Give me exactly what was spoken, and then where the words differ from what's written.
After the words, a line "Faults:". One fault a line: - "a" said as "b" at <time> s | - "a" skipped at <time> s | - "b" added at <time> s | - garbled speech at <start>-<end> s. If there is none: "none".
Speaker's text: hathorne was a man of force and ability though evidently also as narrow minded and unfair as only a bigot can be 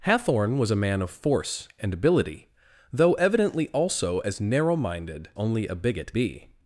hathorne was a man of force and ability though evidently also as narrow minded only a bigot be
Faults:
- "and unfair as" skipped at 5.3 s
- "can" skipped at 6.1 s